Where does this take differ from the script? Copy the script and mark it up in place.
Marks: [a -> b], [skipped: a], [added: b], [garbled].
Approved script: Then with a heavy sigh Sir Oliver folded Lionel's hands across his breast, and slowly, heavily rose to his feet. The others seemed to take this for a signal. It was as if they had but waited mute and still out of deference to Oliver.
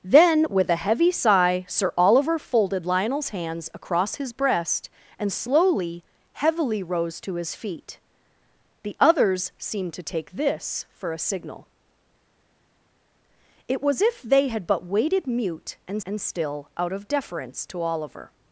Then with a heavy sigh Sir Oliver folded Lionel's hands across his breast, and slowly, heavily rose to his feet. The others seemed to take this for a signal. It was [skipped: as] if they had but waited mute and [added: and] still out of deference to Oliver.